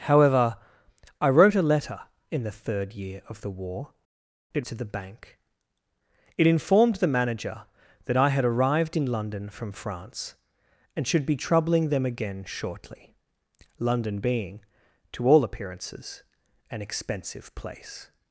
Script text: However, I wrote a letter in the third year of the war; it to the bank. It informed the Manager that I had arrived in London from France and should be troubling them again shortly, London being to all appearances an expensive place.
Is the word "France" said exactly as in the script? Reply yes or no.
yes